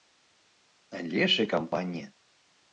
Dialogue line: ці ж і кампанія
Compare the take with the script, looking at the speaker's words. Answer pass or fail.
fail